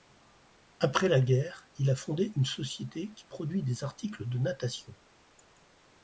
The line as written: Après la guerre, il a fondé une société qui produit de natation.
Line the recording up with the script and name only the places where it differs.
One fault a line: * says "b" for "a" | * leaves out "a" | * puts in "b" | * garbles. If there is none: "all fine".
* puts in "des articles"